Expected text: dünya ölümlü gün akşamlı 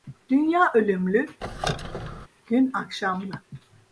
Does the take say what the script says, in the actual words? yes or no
yes